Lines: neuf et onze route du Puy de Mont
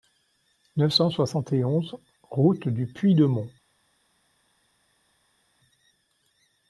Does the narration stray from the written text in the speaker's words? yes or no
yes